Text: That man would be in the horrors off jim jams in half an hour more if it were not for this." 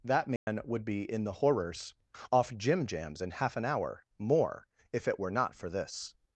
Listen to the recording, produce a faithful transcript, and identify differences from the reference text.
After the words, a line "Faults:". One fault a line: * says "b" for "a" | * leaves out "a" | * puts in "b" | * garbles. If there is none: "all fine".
That man would be in the horrors off jim jams in half an hour more if it were not for this."
Faults:
all fine